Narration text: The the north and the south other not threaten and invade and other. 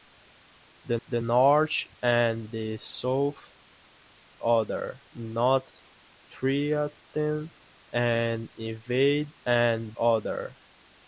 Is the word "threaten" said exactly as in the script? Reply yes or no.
yes